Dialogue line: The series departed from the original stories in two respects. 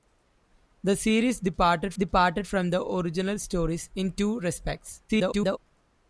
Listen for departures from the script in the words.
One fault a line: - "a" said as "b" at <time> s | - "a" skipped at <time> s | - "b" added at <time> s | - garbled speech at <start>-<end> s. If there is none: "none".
- "departed" added at 1.9 s
- garbled speech at 5.1-5.6 s